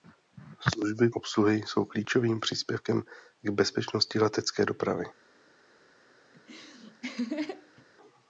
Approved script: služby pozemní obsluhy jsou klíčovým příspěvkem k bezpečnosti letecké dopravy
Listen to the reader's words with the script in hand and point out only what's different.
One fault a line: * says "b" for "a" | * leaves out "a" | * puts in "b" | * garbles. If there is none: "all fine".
* leaves out "pozemní"